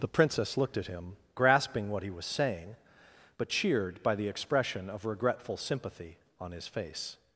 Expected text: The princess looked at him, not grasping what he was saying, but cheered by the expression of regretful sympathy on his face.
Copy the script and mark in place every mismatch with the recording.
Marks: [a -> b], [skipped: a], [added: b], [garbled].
The princess looked at him, [skipped: not] grasping what he was saying, but cheered by the expression of regretful sympathy on his face.